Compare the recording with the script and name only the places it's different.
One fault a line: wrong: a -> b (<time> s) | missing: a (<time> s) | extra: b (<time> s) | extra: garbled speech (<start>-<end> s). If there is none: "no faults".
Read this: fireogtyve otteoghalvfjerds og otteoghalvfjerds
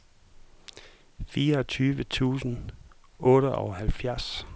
wrong: otteoghalvfjerds -> tusind (2.0 s)